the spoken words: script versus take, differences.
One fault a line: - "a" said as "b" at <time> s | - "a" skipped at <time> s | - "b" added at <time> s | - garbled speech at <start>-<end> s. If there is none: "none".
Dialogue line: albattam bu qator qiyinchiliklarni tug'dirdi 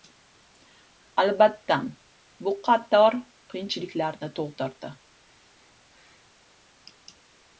none